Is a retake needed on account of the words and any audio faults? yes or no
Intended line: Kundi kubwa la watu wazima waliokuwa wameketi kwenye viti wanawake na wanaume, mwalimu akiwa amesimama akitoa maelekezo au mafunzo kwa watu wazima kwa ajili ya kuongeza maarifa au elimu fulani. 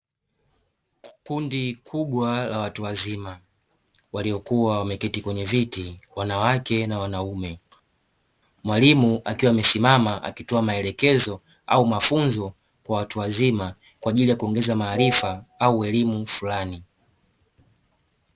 no